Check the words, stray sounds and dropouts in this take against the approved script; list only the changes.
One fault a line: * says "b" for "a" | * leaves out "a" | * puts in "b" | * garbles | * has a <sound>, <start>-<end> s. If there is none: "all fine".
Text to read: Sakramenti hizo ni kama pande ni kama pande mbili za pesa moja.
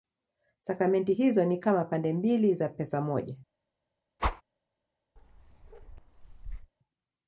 * leaves out "ni kama pande"
* has a whoosh, 4.2-4.4 s
* has a bark, 5.2-6.7 s